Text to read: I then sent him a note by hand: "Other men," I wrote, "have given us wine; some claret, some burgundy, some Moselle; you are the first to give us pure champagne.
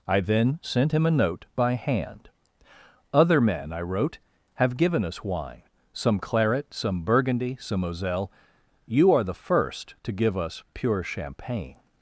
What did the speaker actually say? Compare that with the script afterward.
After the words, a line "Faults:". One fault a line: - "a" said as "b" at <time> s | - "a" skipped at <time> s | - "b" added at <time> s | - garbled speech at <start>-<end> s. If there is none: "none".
I then sent him a note by hand: "Other men," I wrote, "have given us wine; some claret, some burgundy, some Moselle; you are the first to give us pure champagne.
Faults:
none